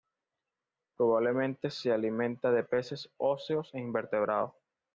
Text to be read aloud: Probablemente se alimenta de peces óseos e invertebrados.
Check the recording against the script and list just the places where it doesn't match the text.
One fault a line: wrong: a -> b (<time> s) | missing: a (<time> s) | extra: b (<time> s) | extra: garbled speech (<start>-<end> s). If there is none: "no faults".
no faults